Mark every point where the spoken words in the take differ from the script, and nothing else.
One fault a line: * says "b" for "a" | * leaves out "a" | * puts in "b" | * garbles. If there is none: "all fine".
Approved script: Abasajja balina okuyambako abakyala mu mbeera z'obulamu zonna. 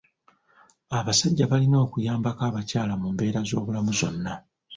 all fine